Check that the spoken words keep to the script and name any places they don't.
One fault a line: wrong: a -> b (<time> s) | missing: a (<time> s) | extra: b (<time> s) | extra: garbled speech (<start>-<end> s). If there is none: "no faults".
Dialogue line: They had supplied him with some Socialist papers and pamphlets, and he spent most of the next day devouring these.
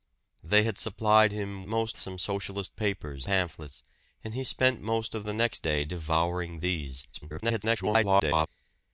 wrong: with -> most (1.6 s)
missing: and (3.3 s)
extra: garbled speech (7.1-8.5 s)